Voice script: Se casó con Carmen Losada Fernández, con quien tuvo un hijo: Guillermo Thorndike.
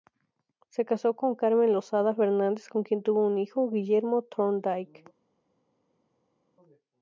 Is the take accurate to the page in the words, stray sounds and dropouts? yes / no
yes